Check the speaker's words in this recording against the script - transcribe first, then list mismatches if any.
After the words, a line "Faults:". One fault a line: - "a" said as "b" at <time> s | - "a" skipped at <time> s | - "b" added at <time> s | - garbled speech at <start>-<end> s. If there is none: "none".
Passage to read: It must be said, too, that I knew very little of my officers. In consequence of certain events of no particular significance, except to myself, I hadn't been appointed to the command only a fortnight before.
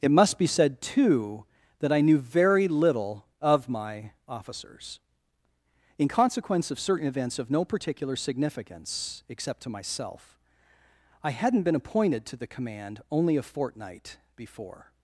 It must be said, too, that I knew very little of my officers. In consequence of certain events of no particular significance, except to myself, I hadn't been appointed to the command only a fortnight before.
Faults:
none